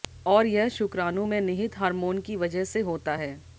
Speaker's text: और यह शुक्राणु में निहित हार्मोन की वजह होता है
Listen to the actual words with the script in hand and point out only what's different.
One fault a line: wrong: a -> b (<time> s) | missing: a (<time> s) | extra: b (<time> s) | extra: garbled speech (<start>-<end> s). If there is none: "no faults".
extra: से (2.6 s)